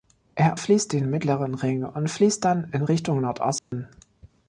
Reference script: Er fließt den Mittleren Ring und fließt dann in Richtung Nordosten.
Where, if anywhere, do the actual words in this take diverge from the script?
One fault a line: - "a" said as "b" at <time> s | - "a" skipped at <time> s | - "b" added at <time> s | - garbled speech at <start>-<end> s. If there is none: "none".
none